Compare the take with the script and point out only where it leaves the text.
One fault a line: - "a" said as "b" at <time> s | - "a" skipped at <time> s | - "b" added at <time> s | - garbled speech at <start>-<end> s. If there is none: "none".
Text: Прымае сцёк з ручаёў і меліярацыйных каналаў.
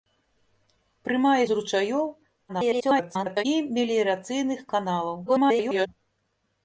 - "сцёк" skipped at 1.4 s
- garbled speech at 2.5-3.4 s
- garbled speech at 5.3-5.9 s